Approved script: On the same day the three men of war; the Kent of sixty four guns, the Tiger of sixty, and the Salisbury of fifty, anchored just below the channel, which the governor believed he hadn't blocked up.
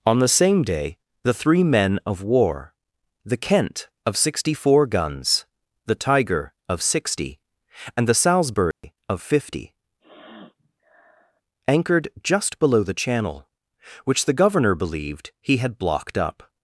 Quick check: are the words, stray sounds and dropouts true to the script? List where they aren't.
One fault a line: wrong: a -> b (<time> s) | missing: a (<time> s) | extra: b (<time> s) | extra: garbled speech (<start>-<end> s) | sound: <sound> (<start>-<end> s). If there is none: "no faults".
sound: dropout (8.7-8.8 s)
sound: sniff (10.0-11.4 s)
wrong: hadn't -> had (15.6 s)